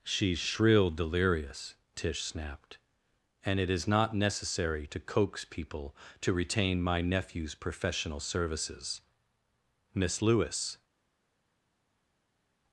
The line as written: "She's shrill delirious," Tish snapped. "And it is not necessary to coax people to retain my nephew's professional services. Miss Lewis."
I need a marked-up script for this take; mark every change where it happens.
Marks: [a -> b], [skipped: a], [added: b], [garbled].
"She's shrill delirious," Tish snapped. "And it is not necessary to coax people to retain my nephew's professional services. Miss Lewis."